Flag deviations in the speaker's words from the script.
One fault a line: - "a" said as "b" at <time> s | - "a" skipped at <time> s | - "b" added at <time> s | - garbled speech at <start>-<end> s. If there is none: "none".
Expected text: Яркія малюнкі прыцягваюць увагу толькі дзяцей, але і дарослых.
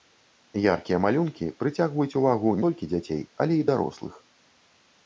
none